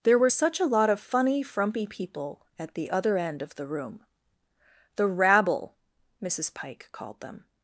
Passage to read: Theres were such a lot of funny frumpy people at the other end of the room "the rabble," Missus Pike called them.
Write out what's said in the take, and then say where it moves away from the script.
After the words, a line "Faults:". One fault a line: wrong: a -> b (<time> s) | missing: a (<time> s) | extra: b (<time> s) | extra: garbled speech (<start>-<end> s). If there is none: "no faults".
There were such a lot of funny frumpy people at the other end of the room "the rabble," Missus Pike called them.
Faults:
wrong: Theres -> There (0.0 s)